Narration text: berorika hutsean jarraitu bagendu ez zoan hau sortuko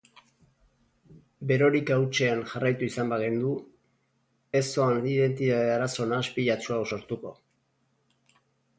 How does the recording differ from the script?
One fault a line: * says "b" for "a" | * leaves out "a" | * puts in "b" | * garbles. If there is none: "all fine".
* puts in "izan"
* puts in "identitate arazo nahaspilatsu"